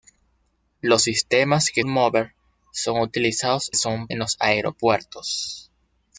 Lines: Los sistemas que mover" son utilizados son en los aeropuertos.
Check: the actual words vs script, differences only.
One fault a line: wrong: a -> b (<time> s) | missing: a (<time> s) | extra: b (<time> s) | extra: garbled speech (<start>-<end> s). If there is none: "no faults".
no faults